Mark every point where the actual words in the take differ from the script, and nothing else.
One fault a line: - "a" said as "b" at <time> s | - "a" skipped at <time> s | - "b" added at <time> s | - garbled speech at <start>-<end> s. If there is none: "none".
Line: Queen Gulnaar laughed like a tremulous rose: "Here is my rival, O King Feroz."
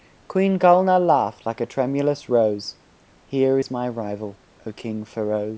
none